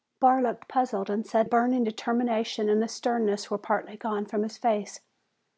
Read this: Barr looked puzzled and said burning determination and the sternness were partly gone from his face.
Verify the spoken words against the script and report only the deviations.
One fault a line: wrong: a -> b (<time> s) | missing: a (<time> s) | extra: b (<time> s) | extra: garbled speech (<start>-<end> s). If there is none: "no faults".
no faults